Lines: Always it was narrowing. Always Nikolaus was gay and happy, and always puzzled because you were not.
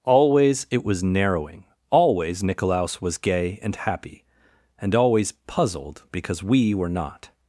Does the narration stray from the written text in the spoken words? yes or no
yes